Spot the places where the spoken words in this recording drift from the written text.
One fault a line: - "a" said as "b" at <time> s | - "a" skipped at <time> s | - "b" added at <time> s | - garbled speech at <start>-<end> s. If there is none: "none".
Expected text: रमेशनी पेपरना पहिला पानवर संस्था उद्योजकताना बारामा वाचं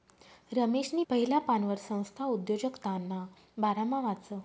- "पेपरना" skipped at 1.0 s